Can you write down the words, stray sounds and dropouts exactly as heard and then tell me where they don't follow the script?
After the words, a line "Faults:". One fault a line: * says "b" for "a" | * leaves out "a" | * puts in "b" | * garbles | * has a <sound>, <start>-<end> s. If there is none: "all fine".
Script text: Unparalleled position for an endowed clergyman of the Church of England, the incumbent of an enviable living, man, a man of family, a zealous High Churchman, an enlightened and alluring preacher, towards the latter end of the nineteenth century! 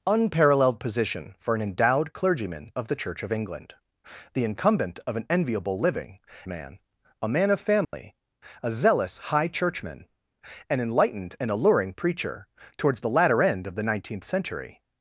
Unparalleled position for an endowed clergyman of the Church of England, the incumbent of an enviable living, man, a man of family, a zealous High Churchman, an enlightened and alluring preacher, towards the latter end of the nineteenth century!
Faults:
* has a dropout, 7.8-7.9 s